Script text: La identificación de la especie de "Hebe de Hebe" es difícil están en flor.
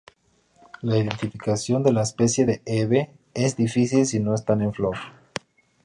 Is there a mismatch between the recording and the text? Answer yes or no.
yes